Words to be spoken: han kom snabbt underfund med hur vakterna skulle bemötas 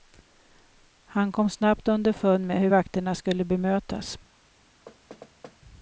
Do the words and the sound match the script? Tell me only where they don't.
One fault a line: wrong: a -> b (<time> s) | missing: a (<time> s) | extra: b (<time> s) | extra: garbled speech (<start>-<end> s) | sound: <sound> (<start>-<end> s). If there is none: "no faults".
sound: thud (4.9-5.6 s)